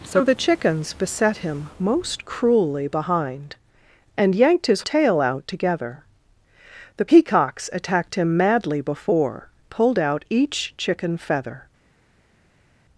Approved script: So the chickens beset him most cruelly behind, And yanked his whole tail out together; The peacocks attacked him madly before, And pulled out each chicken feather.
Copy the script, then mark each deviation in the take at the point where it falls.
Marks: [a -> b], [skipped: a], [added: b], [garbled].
So the chickens beset him most cruelly behind, And yanked his [skipped: whole] tail out together; The peacocks attacked him madly before, [skipped: And] pulled out each chicken feather.